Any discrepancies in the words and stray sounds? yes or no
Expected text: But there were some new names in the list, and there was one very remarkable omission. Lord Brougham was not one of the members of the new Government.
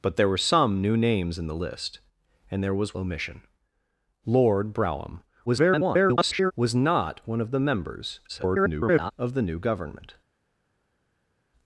yes